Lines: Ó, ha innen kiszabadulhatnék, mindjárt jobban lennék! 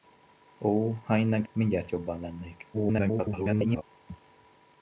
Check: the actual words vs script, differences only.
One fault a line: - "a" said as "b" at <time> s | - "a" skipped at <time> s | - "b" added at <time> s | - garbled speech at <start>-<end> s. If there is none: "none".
- "kiszabadulhatnék" skipped at 1.4 s
- garbled speech at 2.7-3.8 s